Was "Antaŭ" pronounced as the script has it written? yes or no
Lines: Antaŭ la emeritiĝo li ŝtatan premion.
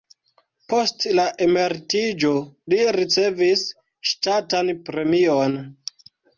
no